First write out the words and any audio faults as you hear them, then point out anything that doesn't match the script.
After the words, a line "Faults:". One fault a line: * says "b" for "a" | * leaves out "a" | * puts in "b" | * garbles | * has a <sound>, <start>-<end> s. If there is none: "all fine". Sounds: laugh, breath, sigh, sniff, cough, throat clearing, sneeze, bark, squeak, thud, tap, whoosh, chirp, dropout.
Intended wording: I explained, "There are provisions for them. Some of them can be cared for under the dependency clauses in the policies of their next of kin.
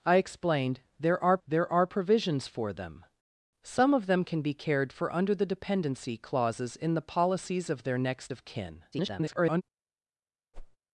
I explained, "There are there are provisions for them. Some of them can be cared for under the dependency clauses in the policies of their next of kin. [garbled]
Faults:
* puts in "there are"
* garbles
* has a whoosh, 10.5-10.8 s